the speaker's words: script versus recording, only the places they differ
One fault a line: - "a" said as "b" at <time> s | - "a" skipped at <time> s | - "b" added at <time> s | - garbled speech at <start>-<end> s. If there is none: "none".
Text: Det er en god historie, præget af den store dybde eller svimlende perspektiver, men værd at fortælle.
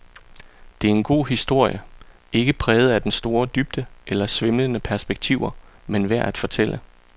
- "ikke" added at 2.3 s